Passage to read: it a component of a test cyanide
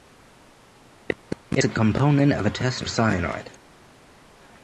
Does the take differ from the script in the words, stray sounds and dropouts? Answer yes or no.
no